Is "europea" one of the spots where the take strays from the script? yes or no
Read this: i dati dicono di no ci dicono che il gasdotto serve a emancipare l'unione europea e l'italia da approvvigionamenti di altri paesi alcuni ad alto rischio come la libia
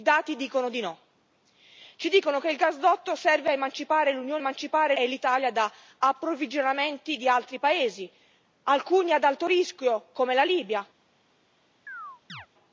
yes